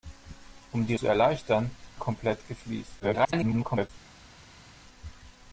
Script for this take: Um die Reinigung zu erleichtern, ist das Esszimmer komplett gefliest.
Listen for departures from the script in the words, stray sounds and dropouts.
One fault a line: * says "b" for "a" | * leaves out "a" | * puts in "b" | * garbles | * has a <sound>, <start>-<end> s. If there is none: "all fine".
* leaves out "Reinigung"
* leaves out "ist das Esszimmer"
* garbles